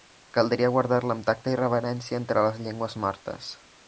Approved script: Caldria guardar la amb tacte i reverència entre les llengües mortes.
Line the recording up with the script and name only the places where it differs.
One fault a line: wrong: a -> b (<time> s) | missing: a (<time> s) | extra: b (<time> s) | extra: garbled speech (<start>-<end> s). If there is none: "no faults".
no faults